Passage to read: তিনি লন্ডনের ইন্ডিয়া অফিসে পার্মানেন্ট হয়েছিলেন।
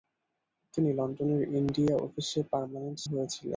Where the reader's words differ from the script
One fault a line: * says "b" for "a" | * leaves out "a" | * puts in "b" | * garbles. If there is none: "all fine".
all fine